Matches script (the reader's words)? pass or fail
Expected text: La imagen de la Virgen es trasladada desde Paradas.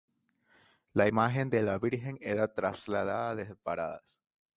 fail